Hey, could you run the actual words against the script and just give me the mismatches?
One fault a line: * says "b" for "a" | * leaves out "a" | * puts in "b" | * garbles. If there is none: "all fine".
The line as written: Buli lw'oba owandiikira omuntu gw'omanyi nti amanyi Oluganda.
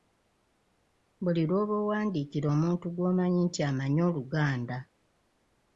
all fine